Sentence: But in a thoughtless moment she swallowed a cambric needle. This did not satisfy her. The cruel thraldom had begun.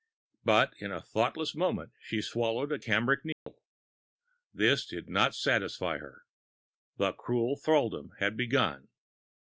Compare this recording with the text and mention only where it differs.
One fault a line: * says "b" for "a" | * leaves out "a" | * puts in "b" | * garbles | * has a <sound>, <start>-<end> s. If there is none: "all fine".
* has a dropout, 3.3-3.5 s